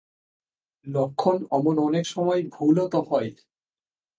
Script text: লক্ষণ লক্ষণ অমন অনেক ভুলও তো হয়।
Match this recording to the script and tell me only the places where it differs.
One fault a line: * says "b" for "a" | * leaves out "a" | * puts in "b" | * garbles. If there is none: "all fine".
* leaves out "লক্ষণ"
* puts in "সময়"